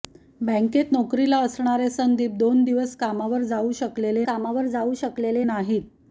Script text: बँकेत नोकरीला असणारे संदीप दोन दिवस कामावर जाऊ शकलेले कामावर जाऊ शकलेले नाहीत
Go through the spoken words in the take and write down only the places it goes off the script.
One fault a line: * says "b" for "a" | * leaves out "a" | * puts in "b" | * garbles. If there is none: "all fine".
all fine